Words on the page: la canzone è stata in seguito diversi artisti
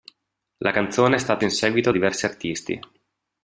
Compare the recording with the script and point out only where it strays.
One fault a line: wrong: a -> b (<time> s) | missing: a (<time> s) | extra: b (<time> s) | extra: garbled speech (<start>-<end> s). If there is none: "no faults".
no faults